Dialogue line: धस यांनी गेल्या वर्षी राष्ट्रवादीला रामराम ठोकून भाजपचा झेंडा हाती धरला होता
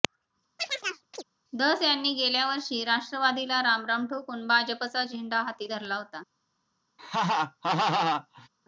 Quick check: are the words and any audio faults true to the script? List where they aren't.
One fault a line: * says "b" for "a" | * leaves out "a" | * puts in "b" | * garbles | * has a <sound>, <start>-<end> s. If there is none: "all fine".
* has a chirp, 0.6-1.2 s
* has a laugh, 7.0-8.5 s